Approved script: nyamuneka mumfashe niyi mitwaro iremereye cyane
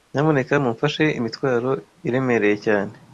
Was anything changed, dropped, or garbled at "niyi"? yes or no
yes